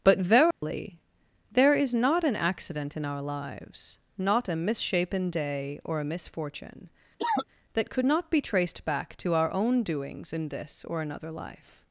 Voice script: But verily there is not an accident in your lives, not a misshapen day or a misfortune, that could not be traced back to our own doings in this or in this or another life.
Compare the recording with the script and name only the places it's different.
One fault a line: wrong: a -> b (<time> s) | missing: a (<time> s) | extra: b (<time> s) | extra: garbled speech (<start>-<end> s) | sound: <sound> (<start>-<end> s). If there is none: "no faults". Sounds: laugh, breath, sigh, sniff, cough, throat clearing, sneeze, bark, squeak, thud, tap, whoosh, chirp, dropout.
sound: dropout (0.5-0.6 s)
wrong: your -> our (3.0 s)
sound: cough (7.2-7.5 s)
missing: in this or (11.0 s)